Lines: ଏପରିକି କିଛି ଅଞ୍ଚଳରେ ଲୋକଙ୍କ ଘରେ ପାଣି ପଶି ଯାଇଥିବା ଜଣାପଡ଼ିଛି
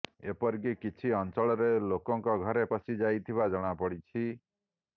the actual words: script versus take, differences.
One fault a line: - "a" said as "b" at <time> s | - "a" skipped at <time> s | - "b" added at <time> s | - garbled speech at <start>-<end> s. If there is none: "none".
- "ପାଣି" skipped at 2.6 s